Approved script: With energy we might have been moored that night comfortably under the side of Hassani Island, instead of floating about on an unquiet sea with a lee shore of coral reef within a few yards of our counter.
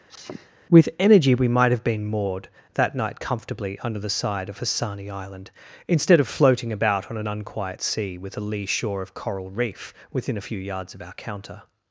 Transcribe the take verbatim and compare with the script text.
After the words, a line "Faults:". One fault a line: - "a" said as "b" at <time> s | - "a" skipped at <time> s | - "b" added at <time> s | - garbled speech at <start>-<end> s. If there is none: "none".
With energy we might have been moored that night comfortably under the side of Hassani Island, instead of floating about on an unquiet sea with a lee shore of coral reef within a few yards of our counter.
Faults:
none